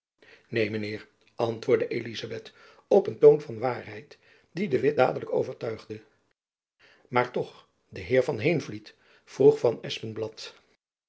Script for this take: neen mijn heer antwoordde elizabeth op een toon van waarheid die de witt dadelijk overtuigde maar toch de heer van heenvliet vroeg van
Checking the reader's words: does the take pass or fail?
pass